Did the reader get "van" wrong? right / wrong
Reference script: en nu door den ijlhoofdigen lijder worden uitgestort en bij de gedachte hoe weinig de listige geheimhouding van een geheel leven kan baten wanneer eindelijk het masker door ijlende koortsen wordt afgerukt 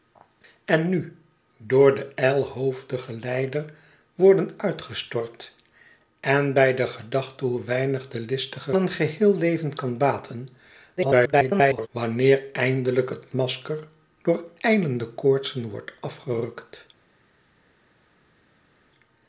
wrong